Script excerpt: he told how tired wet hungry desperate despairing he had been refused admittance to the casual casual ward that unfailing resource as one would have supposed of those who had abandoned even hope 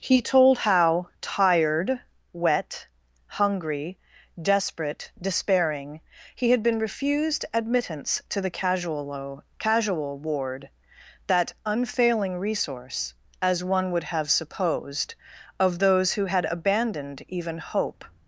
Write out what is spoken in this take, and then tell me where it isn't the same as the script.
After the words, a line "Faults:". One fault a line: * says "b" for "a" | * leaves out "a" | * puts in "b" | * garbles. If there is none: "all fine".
he told how tired wet hungry desperate despairing he had been refused admittance to the casual casual ward that unfailing resource as one would have supposed of those who had abandoned even hope
Faults:
all fine